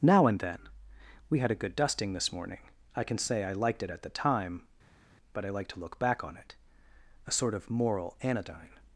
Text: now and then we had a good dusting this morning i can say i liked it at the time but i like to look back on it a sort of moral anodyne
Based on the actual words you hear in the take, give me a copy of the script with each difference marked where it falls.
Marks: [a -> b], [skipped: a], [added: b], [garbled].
now and then we had a good dusting this morning i can say i liked it at the time but i like to look back on it a sort of moral anodyne